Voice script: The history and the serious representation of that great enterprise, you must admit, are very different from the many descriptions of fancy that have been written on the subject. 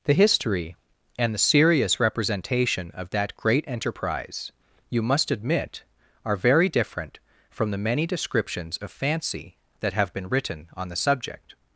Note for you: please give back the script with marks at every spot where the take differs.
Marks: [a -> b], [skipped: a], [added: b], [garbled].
The history and the serious representation of that great enterprise, you must admit, are very different from the many descriptions of fancy that have been written on the subject.